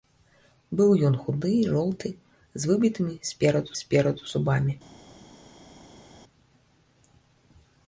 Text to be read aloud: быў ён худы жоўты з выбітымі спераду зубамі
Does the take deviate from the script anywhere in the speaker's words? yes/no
yes